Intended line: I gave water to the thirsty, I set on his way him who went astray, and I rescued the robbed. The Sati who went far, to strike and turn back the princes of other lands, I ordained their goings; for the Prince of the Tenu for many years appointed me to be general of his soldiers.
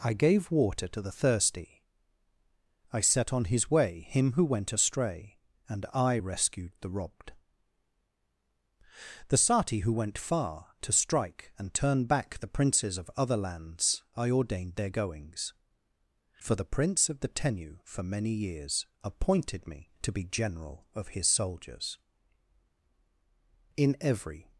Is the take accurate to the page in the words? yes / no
no